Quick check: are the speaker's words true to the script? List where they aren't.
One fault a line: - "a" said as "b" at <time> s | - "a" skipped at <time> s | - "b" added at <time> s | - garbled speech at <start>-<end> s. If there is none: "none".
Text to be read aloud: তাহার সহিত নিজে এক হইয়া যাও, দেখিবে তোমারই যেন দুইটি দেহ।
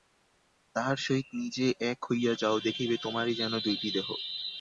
none